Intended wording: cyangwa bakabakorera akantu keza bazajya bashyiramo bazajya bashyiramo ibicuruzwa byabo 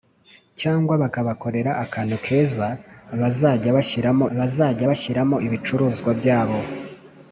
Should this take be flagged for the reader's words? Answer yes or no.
no